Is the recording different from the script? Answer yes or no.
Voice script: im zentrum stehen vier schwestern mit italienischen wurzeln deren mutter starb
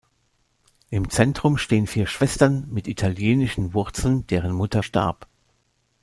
no